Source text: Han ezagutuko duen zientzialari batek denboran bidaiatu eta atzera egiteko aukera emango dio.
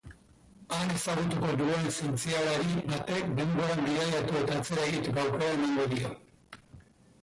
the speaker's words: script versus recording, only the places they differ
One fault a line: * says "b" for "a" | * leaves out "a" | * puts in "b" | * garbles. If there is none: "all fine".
all fine